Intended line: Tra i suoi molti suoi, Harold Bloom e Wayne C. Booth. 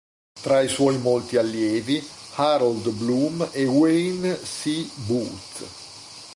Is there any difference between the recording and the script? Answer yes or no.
yes